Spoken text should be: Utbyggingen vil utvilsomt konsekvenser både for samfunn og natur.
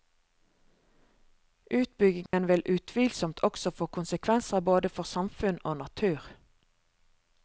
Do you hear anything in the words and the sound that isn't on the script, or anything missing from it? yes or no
yes